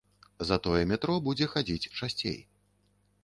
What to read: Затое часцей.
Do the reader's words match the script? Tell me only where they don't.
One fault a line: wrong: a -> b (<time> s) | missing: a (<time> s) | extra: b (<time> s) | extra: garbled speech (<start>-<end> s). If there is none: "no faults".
extra: метро будзе хадзіць (0.9 s)